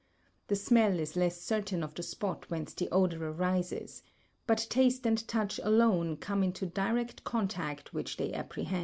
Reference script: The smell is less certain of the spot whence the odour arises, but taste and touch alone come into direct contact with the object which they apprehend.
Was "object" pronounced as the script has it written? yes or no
no